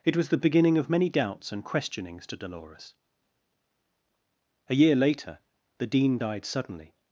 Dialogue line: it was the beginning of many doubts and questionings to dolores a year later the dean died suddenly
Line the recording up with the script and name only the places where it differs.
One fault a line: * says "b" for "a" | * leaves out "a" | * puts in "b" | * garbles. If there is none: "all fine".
all fine